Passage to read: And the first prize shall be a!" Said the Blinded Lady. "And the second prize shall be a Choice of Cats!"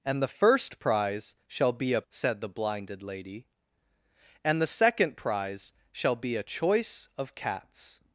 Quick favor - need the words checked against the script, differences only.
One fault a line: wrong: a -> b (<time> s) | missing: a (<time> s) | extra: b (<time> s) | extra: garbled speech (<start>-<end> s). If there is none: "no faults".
no faults